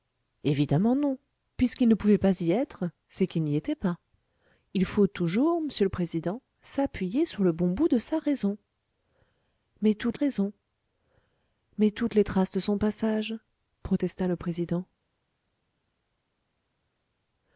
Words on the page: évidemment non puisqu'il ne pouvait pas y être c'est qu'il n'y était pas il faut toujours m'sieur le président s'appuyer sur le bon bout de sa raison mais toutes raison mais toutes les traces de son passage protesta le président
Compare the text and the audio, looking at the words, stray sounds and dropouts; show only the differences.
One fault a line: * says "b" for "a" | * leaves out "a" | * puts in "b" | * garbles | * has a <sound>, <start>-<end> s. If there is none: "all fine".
all fine